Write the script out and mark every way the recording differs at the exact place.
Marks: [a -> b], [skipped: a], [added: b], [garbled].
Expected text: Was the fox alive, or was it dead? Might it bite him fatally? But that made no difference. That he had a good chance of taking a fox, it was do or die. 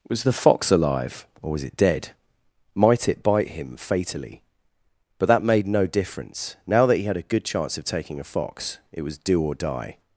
Was the fox alive, or was it dead? Might it bite him fatally? But that made no difference. [added: Now] That he had a good chance of taking a fox, it was do or die.